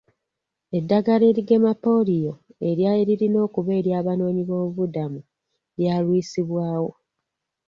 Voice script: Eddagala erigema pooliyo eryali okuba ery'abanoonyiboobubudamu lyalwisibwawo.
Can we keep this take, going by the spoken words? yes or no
no